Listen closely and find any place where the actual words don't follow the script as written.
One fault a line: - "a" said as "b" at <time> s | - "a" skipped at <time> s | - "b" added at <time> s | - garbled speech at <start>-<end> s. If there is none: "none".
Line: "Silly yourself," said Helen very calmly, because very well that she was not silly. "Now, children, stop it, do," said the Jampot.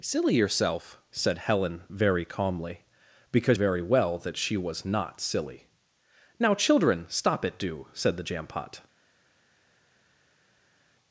none